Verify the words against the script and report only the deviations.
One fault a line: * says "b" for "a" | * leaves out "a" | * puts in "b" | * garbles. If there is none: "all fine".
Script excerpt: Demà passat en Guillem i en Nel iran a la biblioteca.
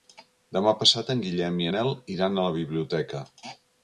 * leaves out "en"